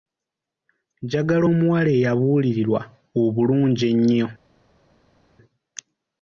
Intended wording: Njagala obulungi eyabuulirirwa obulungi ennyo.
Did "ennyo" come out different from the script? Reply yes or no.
no